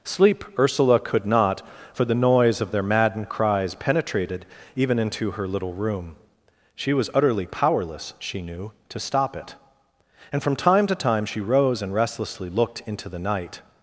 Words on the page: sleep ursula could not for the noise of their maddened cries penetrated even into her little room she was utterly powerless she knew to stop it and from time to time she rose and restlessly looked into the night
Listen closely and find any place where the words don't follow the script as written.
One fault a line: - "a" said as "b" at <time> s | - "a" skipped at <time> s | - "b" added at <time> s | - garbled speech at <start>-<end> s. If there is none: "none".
none